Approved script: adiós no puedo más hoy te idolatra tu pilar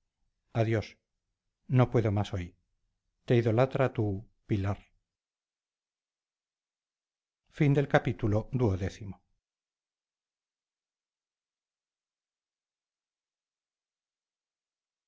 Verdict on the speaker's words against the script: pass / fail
pass